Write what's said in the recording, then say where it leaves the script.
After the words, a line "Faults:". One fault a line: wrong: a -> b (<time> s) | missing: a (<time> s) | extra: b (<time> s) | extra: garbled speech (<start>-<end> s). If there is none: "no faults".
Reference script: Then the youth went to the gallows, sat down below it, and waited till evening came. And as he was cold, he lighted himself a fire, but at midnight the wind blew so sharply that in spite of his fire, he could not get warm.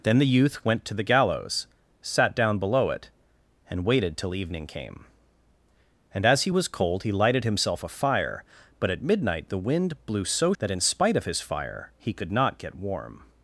Then the youth went to the gallows, sat down below it, and waited till evening came. And as he was cold, he lighted himself a fire, but at midnight the wind blew so that in spite of his fire, he could not get warm.
Faults:
missing: sharply (10.5 s)